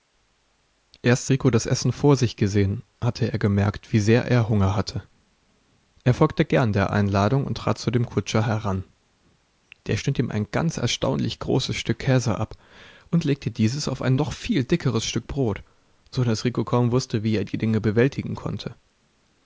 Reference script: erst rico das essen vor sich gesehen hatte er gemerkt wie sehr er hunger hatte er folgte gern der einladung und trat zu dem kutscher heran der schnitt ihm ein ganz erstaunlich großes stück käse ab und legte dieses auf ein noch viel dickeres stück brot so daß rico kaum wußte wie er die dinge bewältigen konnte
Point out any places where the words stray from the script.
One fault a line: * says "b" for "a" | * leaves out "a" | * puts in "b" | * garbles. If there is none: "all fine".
all fine